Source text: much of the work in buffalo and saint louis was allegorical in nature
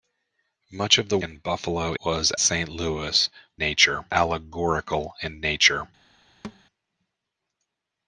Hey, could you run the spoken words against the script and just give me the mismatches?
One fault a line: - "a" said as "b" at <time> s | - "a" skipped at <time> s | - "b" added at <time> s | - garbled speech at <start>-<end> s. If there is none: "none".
- "work" skipped at 1.2 s
- "and" said as "was" at 2.0 s
- "was" said as "nature" at 3.6 s